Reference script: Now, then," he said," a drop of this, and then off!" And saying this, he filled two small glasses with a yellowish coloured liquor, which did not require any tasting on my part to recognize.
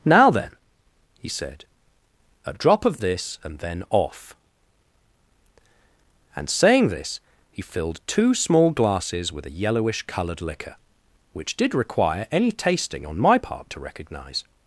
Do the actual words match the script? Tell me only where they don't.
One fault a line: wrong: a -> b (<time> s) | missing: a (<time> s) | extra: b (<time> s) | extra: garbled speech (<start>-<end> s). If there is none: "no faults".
missing: not (11.7 s)